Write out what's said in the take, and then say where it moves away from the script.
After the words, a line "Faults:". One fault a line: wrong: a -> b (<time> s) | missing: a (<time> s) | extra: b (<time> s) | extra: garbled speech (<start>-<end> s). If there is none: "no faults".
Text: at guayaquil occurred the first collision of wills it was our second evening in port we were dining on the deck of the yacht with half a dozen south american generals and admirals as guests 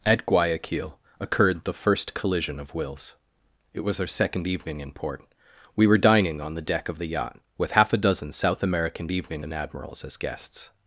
at guayaquil occurred the first collision of wills it was our second evening in port we were dining on the deck of the yacht with half a dozen south american evening and admirals as guests
Faults:
wrong: generals -> evening (9.1 s)